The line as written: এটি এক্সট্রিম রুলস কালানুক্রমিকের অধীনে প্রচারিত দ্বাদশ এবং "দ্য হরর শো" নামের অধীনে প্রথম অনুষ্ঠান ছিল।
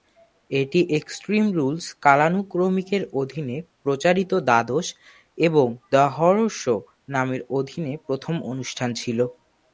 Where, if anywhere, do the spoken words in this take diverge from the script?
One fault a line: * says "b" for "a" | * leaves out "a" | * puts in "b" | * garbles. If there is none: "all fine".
all fine